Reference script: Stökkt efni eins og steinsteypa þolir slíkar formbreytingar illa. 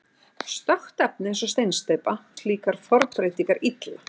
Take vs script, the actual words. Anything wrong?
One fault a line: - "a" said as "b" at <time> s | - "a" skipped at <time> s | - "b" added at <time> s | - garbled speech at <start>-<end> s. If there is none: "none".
- "þolir" skipped at 2.1 s